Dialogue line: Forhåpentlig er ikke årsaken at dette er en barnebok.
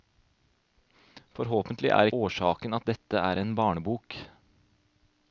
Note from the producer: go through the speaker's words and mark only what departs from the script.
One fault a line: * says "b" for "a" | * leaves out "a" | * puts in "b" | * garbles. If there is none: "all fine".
* leaves out "ikke"